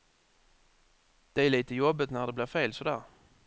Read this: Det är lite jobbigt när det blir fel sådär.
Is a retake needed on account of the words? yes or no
no